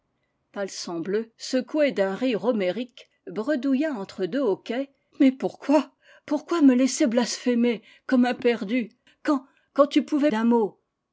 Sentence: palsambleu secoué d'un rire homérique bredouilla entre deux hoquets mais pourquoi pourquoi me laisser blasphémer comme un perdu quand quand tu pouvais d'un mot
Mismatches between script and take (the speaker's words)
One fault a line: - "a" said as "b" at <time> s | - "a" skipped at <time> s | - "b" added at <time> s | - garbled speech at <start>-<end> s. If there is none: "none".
none